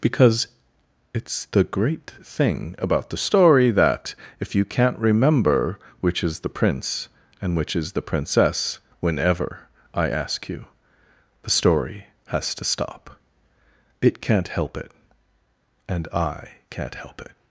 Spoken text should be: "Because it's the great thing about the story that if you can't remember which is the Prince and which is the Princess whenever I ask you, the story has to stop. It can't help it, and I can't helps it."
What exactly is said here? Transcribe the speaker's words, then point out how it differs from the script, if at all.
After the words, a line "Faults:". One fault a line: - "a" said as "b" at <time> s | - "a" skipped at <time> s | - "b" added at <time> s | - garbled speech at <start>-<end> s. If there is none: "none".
"Because it's the great thing about the story that if you can't remember which is the Prince and which is the Princess whenever I ask you, the story has to stop. It can't help it, and I can't help it."
Faults:
- "helps" said as "help" at 16.9 s